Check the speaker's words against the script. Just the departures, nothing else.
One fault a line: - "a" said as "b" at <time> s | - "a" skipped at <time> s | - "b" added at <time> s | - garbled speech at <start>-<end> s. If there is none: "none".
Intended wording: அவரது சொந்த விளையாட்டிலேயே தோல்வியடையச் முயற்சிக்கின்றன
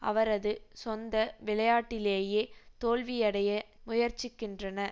none